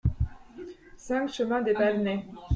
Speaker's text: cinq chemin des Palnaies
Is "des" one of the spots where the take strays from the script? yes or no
no